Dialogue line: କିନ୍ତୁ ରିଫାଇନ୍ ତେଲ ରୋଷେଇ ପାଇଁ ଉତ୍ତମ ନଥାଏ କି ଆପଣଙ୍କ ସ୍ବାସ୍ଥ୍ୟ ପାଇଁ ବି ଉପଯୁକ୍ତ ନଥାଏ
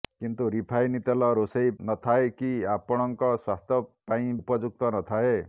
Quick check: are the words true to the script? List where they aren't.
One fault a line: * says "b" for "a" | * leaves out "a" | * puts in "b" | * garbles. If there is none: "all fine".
* leaves out "ପାଇଁ ଉତ୍ତମ"
* leaves out "ବି"